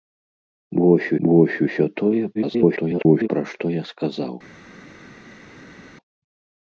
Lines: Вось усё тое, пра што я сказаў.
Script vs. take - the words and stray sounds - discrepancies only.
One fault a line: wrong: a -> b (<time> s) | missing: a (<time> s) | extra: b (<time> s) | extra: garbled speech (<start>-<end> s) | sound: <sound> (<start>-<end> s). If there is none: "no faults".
extra: вось (1.3 s)
extra: garbled speech (2.3-3.3 s)